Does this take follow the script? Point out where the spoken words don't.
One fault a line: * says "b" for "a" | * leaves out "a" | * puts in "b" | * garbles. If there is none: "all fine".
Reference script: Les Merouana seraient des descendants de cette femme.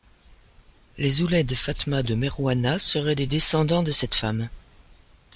* puts in "Ouled Fatma de"